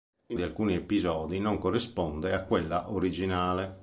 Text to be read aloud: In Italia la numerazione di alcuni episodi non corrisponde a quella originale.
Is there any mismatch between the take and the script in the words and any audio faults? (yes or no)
yes